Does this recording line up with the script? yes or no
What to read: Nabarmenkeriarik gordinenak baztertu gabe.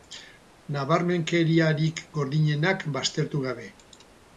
yes